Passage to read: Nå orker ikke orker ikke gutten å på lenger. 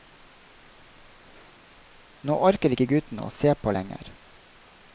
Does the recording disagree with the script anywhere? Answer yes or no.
yes